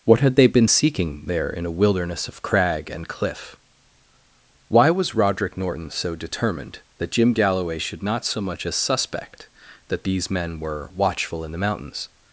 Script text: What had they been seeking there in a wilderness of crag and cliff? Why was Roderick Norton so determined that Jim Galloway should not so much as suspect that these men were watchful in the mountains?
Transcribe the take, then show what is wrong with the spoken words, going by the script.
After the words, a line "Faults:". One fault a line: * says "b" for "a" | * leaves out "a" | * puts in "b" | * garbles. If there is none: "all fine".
What had they been seeking there in a wilderness of crag and cliff? Why was Roderick Norton so determined that Jim Galloway should not so much as suspect that these men were watchful in the mountains?
Faults:
all fine